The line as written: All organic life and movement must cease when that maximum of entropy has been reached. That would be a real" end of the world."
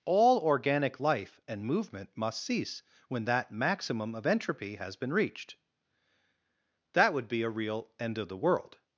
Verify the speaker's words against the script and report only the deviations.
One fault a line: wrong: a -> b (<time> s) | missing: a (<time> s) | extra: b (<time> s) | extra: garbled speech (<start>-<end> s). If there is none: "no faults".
no faults